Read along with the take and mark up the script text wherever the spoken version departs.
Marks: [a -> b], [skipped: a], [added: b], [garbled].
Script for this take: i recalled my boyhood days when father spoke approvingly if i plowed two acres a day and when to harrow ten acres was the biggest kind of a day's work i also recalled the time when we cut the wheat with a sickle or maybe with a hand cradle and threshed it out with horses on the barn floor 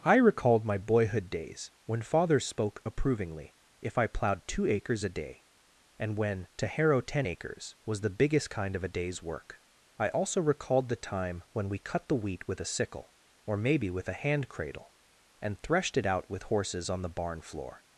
i recalled my boyhood days when father spoke approvingly if i plowed two acres a day and when to harrow ten acres was the biggest kind of a day's work i also recalled the time when we cut the wheat with a sickle or maybe with a hand cradle and threshed it out with horses on the barn floor